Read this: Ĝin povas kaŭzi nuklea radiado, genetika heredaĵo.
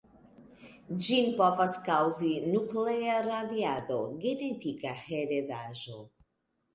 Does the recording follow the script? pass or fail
pass